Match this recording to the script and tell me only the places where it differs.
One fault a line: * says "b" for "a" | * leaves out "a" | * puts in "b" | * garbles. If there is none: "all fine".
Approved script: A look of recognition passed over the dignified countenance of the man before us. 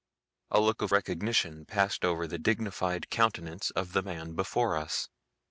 all fine